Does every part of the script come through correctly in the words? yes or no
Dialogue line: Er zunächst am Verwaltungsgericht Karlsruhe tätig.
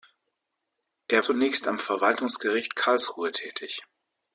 yes